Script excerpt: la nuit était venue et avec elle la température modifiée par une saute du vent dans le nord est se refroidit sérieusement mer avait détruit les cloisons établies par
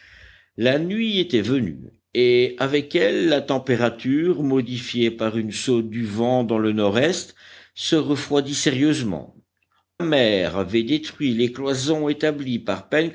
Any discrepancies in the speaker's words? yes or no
no